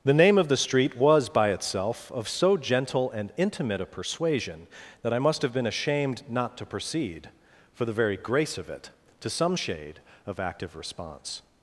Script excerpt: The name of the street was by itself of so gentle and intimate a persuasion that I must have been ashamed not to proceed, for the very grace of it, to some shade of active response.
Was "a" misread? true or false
false